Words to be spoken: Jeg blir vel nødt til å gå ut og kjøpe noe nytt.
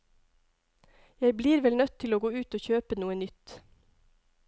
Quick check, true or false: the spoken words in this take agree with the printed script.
true